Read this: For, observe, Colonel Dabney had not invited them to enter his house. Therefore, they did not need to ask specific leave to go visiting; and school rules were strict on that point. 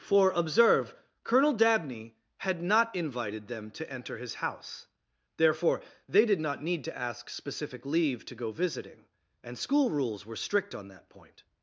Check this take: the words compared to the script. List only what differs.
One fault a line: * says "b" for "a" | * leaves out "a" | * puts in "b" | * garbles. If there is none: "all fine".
all fine